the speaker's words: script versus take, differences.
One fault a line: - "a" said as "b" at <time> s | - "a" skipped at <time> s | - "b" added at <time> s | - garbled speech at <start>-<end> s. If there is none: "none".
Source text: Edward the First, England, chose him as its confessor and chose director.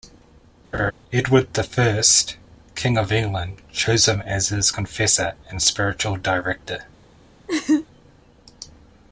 - "King of" added at 2.7 s
- "its" said as "his" at 4.5 s
- "chose" said as "spiritual" at 5.6 s